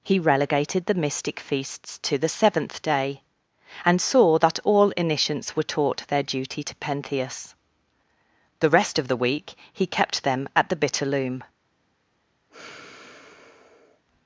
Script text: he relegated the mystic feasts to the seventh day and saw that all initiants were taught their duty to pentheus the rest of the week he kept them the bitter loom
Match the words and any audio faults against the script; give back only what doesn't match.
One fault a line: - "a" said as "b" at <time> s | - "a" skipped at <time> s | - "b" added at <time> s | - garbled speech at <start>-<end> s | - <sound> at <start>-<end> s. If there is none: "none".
- "at" added at 10.5 s
- sigh at 12.5-14.0 s